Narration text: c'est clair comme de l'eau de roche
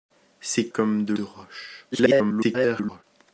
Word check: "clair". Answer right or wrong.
wrong